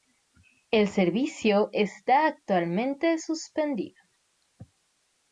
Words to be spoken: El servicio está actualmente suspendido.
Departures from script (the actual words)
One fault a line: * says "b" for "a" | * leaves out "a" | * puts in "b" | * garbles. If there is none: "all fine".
all fine